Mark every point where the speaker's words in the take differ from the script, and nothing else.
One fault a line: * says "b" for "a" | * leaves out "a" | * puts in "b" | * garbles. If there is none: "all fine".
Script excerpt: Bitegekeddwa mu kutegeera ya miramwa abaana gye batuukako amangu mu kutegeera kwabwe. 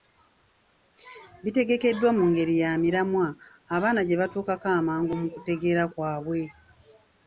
* says "ngeri" for "kutegeera"